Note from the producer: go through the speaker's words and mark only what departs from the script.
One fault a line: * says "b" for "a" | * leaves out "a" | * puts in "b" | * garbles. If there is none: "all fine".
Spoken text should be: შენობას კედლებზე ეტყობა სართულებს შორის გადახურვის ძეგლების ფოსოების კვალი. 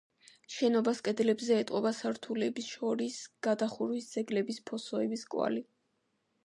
all fine